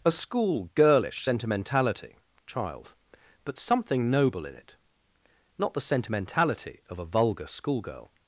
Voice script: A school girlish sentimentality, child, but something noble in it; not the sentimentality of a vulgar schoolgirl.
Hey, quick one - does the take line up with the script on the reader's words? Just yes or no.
yes